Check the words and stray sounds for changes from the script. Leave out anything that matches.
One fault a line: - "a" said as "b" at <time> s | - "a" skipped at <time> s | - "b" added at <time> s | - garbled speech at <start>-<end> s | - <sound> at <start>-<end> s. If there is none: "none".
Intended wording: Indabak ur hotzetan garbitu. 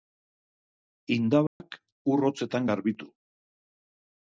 - dropout at 1.5-1.6 s